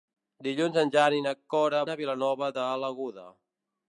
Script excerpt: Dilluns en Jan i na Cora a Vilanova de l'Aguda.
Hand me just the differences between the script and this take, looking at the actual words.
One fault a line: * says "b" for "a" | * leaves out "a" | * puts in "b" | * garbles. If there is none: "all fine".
all fine